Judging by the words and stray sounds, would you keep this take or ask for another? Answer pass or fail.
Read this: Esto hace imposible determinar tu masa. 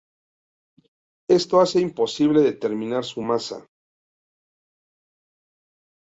fail